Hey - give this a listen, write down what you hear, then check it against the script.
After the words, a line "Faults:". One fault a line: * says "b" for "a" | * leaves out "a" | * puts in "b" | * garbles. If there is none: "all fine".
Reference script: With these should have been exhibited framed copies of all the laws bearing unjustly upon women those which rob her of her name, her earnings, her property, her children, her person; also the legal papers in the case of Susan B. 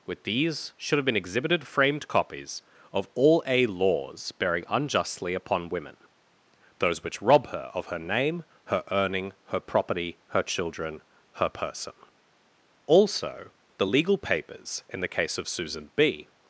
With these should have been exhibited framed copies of all a laws bearing unjustly upon women those which rob her of her name, her earning, her property, her children, her person; also the legal papers in the case of Susan B.
Faults:
* says "a" for "the"
* says "earning" for "earnings"